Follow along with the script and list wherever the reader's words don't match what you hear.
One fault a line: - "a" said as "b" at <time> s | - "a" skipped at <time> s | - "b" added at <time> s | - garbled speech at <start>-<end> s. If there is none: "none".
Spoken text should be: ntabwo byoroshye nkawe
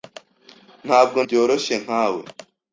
none